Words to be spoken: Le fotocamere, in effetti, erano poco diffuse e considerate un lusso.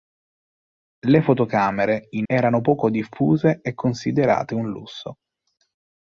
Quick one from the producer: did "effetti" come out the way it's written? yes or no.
no